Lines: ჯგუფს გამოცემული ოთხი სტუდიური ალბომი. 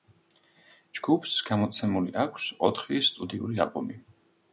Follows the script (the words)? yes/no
no